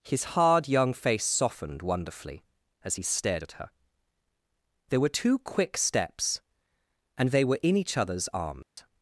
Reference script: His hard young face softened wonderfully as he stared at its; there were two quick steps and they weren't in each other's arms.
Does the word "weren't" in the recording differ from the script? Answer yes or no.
yes